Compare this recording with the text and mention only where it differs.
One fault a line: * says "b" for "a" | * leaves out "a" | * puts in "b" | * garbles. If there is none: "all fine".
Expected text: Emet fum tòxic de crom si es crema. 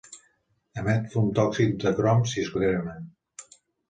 all fine